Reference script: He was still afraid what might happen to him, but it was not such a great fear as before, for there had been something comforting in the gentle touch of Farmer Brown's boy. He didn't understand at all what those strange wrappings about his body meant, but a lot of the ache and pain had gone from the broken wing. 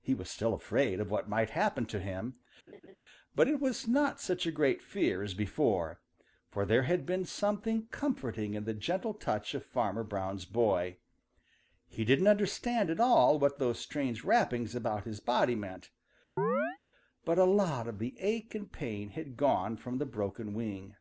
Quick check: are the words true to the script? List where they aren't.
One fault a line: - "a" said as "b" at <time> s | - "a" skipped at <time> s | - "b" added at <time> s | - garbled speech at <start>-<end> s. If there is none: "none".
- "of" added at 1.0 s